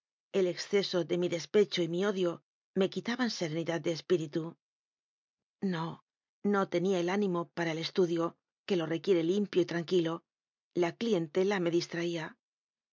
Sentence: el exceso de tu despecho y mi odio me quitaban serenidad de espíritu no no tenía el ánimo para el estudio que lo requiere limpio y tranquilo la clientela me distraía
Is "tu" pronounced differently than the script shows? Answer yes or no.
yes